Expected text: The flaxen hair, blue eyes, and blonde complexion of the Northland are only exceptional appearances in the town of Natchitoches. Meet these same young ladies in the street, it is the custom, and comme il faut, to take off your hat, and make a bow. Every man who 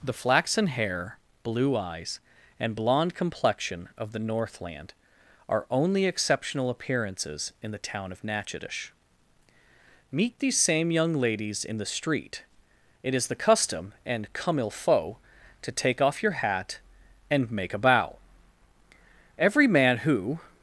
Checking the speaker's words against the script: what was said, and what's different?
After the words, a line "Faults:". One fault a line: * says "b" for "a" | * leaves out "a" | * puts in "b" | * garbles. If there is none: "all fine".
The flaxen hair, blue eyes, and blonde complexion of the Northland are only exceptional appearances in the town of Natchitoches. Meet these same young ladies in the street, it is the custom, and comme il faut, to take off your hat, and make a bow. Every man who
Faults:
all fine